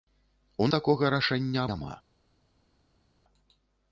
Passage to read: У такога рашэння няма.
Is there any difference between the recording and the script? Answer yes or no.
no